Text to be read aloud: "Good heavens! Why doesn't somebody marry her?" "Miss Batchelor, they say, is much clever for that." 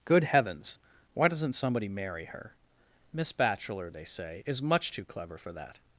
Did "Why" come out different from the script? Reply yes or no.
no